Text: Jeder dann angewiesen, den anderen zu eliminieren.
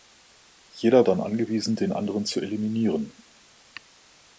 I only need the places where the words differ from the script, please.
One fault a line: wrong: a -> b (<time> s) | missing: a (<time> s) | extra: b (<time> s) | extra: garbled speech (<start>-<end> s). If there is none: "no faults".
no faults